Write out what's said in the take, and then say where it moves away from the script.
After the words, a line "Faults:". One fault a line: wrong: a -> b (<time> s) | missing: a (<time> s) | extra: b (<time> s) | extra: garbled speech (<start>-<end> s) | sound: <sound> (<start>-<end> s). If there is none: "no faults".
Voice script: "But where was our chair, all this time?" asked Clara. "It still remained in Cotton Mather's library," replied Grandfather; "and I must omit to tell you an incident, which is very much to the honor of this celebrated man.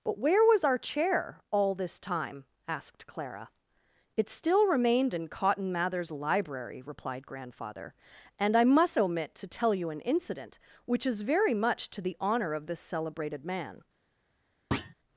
"But where was our chair, all this time?" asked Clara. "It still remained in Cotton Mather's library," replied Grandfather; "and I must omit to tell you an incident, which is very much to the honor of this celebrated man.
Faults:
sound: thud (14.7-14.9 s)